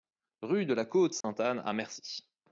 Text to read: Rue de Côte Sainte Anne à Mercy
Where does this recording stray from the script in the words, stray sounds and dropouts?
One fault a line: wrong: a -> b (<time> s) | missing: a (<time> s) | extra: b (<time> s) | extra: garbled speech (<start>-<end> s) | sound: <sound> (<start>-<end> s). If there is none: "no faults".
extra: la (0.7 s)
sound: dropout (1.2-1.2 s)